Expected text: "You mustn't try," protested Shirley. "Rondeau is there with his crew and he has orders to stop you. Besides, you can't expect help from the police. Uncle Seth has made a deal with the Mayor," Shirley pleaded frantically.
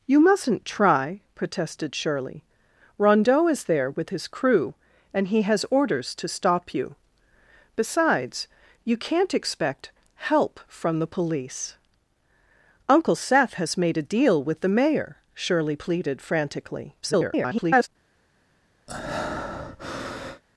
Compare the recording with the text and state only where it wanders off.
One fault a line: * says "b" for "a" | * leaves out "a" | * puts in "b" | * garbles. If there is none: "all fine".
* garbles